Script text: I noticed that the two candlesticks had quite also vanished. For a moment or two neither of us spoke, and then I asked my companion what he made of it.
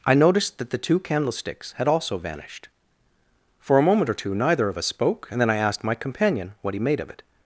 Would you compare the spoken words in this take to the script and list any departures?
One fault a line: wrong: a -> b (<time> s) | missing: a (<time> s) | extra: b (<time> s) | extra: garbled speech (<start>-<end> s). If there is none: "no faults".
missing: quite (1.9 s)